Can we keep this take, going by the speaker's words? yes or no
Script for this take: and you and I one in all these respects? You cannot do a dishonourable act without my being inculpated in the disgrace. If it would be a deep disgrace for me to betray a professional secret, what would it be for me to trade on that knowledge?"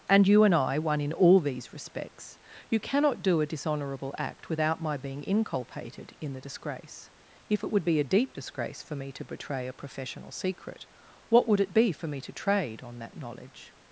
yes